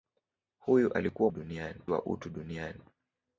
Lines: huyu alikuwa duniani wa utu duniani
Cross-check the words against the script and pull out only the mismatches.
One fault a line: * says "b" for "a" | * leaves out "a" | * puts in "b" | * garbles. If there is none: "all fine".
all fine